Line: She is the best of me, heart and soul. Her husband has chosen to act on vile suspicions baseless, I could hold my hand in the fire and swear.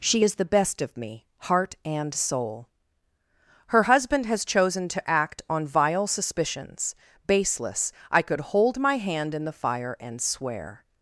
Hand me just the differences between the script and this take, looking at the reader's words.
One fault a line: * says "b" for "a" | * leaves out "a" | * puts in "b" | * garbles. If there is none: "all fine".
all fine